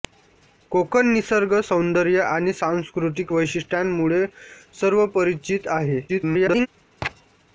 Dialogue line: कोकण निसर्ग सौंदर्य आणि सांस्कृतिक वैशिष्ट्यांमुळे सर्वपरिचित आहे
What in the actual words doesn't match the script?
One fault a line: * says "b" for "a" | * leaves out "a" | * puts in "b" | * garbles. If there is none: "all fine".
* garbles